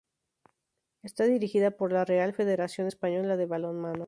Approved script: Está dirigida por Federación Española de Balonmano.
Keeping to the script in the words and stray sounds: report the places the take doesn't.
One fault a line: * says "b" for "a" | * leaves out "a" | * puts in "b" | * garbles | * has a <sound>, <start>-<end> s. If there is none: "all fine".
* puts in "la Real"